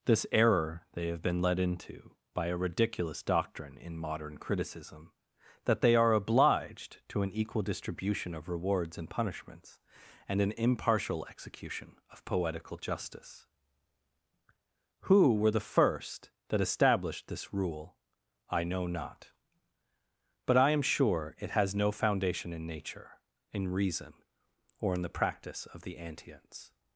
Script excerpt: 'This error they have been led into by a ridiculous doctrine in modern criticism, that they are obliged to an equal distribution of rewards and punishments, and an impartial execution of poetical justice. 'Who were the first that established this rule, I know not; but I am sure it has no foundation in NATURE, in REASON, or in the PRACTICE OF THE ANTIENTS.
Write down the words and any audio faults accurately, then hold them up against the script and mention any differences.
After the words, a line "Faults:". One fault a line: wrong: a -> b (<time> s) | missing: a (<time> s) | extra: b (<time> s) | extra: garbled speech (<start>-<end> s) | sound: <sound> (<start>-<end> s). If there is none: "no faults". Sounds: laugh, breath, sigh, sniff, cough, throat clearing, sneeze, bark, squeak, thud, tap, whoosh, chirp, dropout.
'This error they have been led into by a ridiculous doctrine in modern criticism, that they are obliged to an equal distribution of rewards and punishments, and an impartial execution of poetical justice. 'Who were the first that established this rule, I know not; but I am sure it has no foundation in NATURE, in REASON, or in the PRACTICE OF THE ANTIENTS.
Faults:
no faults